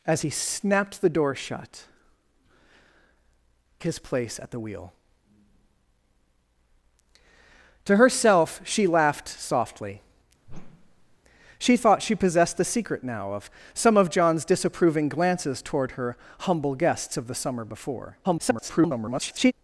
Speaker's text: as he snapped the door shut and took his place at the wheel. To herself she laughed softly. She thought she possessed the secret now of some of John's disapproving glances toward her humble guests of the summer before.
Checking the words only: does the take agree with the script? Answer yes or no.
no